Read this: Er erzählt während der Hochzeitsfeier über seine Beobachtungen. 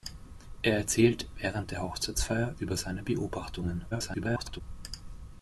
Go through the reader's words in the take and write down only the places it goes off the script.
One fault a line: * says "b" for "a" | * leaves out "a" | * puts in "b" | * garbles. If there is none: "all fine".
* garbles